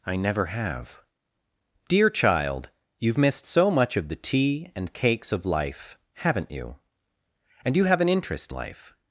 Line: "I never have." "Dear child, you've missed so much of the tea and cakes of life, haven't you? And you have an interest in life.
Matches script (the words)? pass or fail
fail